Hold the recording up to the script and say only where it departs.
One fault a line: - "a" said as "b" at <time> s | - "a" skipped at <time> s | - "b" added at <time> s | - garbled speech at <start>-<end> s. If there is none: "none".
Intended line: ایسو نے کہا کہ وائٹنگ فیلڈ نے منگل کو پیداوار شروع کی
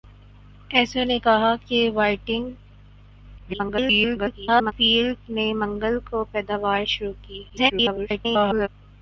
- garbled speech at 3.4-4.7 s
- garbled speech at 7.5-8.7 s